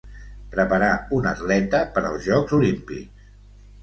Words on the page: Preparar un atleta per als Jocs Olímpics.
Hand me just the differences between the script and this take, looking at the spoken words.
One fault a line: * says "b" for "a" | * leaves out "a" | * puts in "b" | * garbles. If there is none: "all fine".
all fine